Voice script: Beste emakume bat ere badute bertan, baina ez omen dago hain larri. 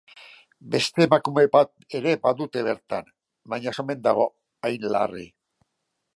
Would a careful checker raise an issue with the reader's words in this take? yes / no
no